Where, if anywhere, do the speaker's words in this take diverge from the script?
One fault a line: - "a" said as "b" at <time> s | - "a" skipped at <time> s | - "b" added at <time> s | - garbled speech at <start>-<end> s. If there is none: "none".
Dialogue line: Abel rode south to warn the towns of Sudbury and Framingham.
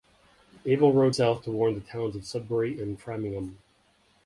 none